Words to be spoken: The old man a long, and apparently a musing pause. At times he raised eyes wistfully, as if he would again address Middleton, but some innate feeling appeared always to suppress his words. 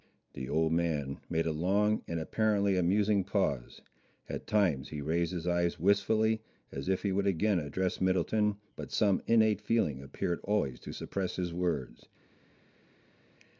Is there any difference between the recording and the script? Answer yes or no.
yes